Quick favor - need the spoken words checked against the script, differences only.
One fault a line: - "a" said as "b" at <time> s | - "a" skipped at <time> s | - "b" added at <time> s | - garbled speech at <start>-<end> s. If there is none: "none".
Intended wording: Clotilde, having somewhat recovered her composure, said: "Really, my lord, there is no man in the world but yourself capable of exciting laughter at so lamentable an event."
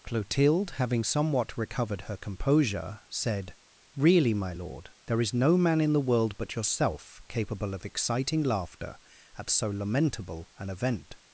none